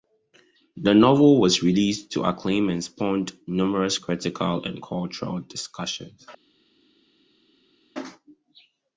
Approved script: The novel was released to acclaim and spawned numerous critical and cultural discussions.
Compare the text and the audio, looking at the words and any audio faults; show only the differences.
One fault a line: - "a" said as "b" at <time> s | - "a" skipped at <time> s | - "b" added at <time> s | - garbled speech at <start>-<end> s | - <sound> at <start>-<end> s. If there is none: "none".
none